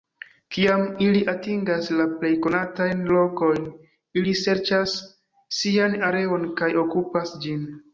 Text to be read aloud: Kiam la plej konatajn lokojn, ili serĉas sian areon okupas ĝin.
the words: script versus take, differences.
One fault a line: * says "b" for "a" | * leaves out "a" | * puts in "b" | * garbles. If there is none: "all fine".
* puts in "ili atingas"
* puts in "kaj"